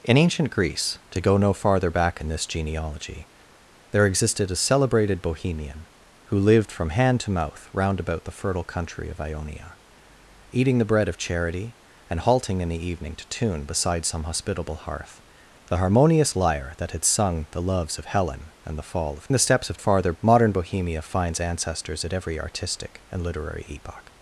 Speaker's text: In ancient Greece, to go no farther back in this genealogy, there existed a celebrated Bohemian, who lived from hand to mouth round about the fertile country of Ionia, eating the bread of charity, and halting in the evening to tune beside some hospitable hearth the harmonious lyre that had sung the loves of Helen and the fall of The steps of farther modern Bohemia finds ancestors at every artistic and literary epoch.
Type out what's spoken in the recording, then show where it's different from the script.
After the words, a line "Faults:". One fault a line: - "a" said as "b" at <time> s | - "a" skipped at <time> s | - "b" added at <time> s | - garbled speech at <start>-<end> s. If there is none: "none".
In ancient Greece, to go no farther back in this genealogy, there existed a celebrated Bohemian, who lived from hand to mouth round about the fertile country of Ionia, eating the bread of charity, and halting in the evening to tune beside some hospitable hearth the harmonious lyre that had sung the loves of Helen and the fall of The steps of farther modern Bohemia finds ancestors at every artistic and literary epoch.
Faults:
none